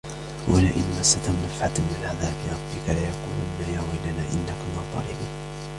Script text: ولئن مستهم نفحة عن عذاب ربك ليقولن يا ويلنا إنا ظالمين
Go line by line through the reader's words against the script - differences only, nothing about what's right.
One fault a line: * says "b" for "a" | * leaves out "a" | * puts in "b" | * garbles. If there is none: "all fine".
* says "من" for "عن"
* puts in "كنا"